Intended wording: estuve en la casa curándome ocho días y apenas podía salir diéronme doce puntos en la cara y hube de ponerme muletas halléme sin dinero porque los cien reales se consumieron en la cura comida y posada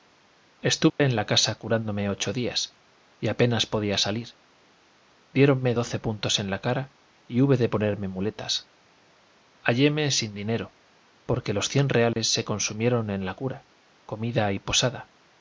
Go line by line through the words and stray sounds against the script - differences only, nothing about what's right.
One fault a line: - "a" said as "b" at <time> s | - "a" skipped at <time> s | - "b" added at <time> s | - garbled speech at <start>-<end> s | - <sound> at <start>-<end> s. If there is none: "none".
- dropout at 0.9-1.0 s
- dropout at 12.1-12.2 s